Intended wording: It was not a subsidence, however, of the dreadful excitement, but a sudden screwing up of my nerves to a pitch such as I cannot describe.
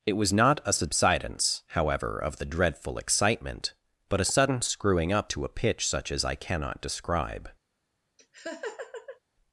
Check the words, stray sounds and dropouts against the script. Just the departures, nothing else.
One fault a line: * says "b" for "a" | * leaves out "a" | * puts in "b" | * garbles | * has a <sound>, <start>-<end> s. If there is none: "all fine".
* leaves out "of my nerves"
* has a laugh, 8.2-9.2 s